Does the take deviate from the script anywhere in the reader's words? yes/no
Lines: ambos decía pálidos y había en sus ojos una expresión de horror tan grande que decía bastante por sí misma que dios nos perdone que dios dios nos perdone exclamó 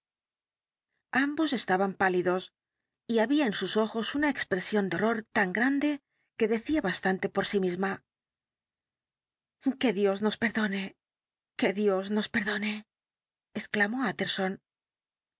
yes